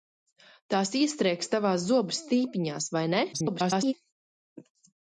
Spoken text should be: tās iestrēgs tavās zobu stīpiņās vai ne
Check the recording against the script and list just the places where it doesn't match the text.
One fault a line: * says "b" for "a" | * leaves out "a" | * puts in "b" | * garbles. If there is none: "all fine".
* garbles